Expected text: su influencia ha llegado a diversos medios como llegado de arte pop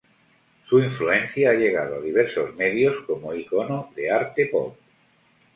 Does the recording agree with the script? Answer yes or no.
no